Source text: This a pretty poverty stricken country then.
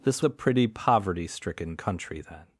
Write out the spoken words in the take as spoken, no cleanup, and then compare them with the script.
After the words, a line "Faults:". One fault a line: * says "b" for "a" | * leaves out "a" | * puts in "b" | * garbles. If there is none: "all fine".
This a pretty poverty stricken country then.
Faults:
all fine